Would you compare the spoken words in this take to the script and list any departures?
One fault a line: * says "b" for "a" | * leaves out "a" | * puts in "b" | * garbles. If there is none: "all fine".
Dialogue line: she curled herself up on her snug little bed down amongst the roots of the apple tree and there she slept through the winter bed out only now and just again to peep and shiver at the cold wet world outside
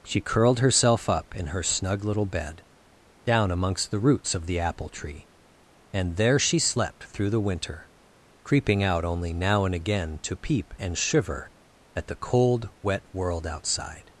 * says "in" for "on"
* says "creeping" for "bed"
* leaves out "just"